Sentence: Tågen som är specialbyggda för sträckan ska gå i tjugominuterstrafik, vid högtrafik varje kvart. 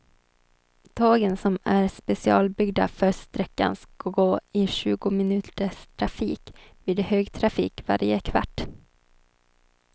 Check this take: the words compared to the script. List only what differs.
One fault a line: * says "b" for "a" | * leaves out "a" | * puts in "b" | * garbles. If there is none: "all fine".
all fine